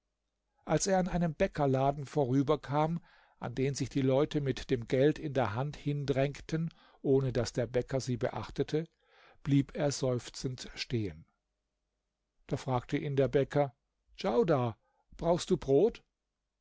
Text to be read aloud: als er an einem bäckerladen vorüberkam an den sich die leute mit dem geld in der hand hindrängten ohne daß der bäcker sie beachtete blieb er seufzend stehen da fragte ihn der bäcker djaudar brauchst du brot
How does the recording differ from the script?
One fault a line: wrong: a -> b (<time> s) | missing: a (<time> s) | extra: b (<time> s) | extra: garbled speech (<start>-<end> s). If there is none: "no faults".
no faults